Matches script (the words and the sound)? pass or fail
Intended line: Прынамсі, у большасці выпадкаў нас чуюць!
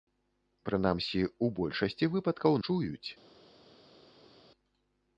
fail